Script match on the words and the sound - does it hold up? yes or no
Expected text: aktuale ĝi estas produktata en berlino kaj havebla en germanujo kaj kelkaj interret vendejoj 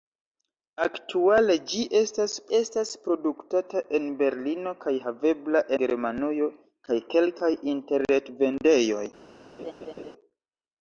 no